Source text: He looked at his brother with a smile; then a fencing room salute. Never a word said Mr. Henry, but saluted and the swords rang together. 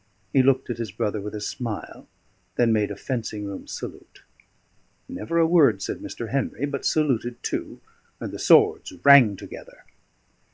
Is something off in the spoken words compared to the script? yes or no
yes